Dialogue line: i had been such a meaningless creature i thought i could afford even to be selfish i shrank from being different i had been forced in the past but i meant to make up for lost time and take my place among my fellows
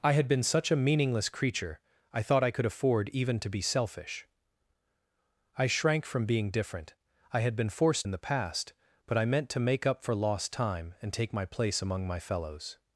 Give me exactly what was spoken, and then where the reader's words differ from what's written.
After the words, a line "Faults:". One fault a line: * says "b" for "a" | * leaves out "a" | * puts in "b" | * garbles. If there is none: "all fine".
i had been such a meaningless creature i thought i could afford even to be selfish i shrank from being different i had been forced in the past but i meant to make up for lost time and take my place among my fellows
Faults:
all fine